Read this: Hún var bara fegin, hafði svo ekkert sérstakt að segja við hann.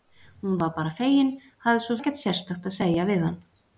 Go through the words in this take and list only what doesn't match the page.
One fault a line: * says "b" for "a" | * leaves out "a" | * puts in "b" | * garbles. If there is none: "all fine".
all fine